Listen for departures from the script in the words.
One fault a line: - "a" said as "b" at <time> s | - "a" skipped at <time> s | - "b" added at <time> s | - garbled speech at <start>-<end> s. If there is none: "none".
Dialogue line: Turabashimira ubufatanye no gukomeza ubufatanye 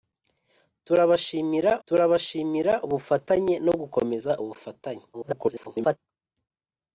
- "turabashimira" added at 1.9 s
- garbled speech at 5.1-6.0 s